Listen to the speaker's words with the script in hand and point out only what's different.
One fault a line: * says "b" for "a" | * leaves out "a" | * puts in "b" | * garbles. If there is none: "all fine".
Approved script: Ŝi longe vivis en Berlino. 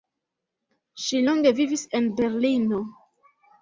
all fine